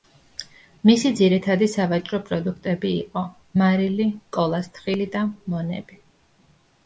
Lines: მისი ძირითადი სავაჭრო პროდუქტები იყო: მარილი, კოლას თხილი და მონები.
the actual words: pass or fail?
pass